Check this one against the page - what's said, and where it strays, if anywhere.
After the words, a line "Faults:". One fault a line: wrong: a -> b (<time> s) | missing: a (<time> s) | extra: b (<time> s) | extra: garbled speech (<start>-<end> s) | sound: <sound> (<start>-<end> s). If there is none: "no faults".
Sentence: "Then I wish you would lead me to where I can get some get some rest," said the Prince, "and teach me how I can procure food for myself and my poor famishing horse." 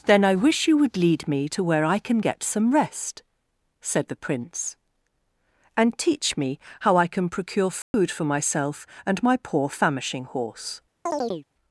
"Then I wish you would lead me to where I can get some rest," said the Prince, "and teach me how I can procure food for myself and my poor famishing horse."
Faults:
missing: get some (2.7 s)
sound: dropout (7.8-7.9 s)
sound: chirp (11.1-11.5 s)